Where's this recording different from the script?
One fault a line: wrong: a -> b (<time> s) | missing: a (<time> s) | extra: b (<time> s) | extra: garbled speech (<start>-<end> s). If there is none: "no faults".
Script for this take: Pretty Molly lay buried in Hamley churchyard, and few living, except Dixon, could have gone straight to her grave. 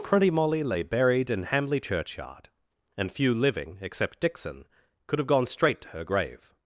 no faults